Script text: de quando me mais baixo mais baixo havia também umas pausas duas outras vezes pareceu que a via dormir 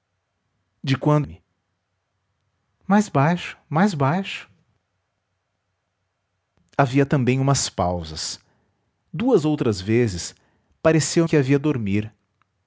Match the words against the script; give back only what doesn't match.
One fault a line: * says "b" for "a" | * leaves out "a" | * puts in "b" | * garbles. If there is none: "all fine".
all fine